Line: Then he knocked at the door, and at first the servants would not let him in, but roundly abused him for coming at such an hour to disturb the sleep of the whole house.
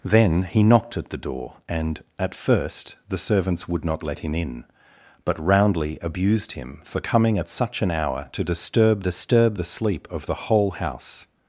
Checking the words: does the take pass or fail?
fail